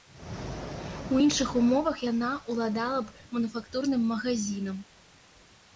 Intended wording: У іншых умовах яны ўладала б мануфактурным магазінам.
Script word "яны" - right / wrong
wrong